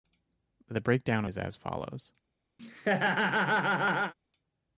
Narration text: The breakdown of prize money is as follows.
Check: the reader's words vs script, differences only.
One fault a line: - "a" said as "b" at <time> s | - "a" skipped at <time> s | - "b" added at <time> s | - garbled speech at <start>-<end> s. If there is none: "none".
- "of prize money" skipped at 1.2 s